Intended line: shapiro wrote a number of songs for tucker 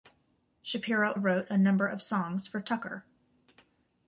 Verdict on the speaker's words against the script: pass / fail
pass